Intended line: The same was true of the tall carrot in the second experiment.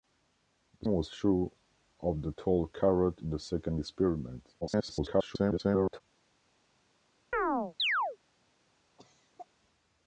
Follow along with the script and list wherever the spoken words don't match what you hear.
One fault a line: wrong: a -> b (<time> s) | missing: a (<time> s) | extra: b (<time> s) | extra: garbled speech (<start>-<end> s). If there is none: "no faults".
missing: same (0.9 s)
extra: garbled speech (4.6-6.0 s)